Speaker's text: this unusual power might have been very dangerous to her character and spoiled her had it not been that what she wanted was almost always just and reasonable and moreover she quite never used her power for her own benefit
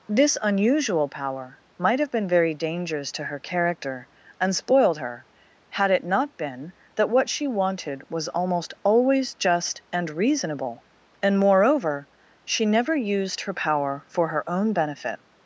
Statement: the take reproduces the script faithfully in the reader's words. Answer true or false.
false